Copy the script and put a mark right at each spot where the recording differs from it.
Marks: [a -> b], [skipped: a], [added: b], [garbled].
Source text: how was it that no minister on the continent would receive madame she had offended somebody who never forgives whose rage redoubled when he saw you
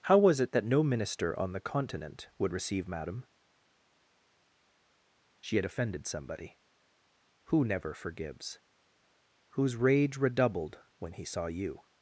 how was it that no minister on the continent would receive madame she had offended somebody who never forgives whose rage redoubled when he saw you